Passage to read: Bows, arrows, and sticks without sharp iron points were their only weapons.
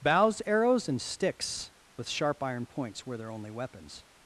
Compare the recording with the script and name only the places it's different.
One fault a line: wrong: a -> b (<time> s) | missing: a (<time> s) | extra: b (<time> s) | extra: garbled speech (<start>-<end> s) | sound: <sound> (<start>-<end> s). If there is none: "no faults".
wrong: without -> with (1.9 s)